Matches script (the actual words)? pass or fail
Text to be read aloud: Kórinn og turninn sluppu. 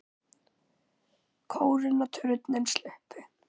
pass